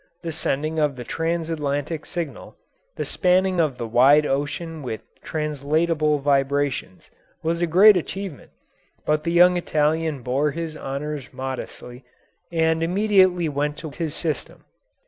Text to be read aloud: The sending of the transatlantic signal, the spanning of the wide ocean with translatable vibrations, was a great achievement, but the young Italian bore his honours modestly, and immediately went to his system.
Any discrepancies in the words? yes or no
no